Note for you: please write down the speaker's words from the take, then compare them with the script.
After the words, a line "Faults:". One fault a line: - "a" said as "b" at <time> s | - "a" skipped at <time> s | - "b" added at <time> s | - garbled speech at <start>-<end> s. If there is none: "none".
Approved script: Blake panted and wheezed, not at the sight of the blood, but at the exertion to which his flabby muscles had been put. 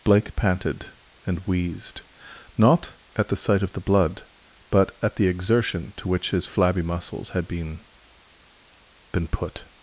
Blake panted and wheezed, not at the sight of the blood, but at the exertion to which his flabby muscles had been been put.
Faults:
- "been" added at 9.1 s